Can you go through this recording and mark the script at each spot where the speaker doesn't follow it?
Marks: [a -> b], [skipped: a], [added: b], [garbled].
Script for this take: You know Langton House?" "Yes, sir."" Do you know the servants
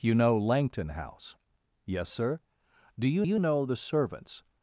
You know Langton House?" "Yes, sir."" Do you [added: you] know the servants